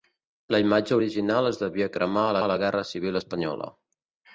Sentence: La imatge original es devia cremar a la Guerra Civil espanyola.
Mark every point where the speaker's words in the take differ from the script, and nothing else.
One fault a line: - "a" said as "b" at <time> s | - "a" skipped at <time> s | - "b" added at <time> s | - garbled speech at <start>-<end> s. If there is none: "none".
- "a" added at 2.4 s